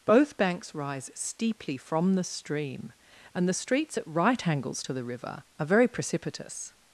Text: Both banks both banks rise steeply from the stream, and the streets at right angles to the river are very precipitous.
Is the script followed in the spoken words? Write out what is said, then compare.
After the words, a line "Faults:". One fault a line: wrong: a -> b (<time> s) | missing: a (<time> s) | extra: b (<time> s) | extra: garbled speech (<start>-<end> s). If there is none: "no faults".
Both banks rise steeply from the stream, and the streets at right angles to the river are very precipitous.
Faults:
missing: both banks (0.7 s)